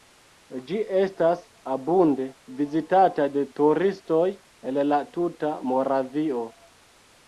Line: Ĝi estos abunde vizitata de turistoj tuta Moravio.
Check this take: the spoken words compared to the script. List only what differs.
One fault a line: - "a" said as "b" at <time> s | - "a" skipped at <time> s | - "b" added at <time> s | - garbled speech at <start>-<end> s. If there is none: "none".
- "estos" said as "estas" at 1.0 s
- "el la" added at 4.7 s